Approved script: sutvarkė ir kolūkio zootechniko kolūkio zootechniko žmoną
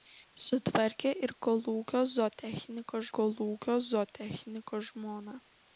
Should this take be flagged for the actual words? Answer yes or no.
no